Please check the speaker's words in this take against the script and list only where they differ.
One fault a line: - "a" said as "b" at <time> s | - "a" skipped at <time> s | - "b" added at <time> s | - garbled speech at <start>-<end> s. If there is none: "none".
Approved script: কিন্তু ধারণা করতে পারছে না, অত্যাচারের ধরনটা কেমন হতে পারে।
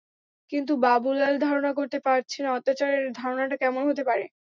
- "বাবুলাল" added at 0.8 s